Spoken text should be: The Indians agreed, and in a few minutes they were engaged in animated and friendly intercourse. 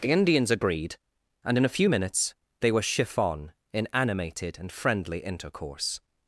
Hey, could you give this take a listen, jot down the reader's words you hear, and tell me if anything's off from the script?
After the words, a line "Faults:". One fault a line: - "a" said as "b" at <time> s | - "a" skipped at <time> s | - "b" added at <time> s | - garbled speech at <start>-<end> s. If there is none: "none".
The Indians agreed, and in a few minutes they were chiffon in animated and friendly intercourse.
Faults:
- "engaged" said as "chiffon" at 2.8 s